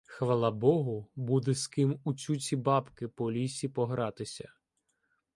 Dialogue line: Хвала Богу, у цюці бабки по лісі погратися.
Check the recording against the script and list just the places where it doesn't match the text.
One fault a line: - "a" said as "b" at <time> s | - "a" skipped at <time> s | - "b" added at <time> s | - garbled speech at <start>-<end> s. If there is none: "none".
- "буде з ким" added at 1.1 s